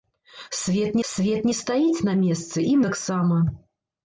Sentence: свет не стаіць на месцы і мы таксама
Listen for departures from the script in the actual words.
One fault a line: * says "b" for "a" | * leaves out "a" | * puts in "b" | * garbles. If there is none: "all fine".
* puts in "свет"
* leaves out "мы"